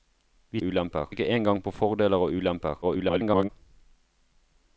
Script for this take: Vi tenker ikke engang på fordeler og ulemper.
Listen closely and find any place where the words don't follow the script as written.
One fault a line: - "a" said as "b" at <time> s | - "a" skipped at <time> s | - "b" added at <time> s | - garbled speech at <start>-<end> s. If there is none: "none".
- "tenker" said as "ulemper" at 0.6 s
- garbled speech at 2.8-3.5 s